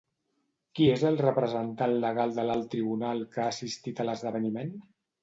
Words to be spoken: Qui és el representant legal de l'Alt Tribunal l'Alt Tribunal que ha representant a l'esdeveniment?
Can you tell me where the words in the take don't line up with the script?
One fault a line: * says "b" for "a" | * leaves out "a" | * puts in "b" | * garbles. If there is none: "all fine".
* leaves out "l'Alt Tribunal"
* says "assistit" for "representant"